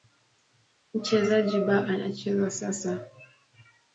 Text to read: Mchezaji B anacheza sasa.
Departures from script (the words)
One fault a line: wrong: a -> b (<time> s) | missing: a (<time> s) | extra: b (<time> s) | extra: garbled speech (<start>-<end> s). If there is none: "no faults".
no faults